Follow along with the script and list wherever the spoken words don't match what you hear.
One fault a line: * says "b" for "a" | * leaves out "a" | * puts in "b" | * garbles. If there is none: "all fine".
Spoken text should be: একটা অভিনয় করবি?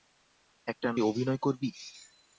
all fine